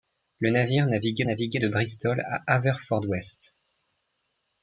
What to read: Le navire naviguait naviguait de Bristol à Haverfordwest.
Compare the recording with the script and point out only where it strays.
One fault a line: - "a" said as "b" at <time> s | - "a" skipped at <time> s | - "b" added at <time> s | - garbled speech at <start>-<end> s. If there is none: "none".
none